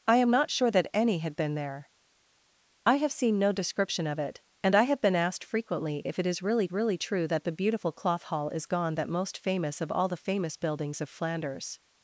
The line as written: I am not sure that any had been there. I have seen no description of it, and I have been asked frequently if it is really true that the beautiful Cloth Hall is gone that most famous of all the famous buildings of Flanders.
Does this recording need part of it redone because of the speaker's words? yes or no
yes